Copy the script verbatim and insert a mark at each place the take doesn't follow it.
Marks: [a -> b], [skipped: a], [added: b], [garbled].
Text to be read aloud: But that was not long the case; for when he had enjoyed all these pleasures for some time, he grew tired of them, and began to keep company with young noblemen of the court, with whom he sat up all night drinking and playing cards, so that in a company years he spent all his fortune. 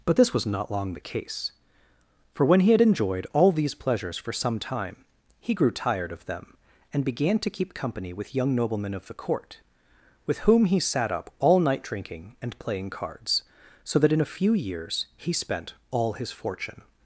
But [that -> this] was not long the case; for when he had enjoyed all these pleasures for some time, he grew tired of them, and began to keep company with young noblemen of the court, with whom he sat up all night drinking and playing cards, so that in a [company -> few] years he spent all his fortune.